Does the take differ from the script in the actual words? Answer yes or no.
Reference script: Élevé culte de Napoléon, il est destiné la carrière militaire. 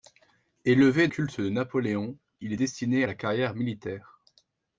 no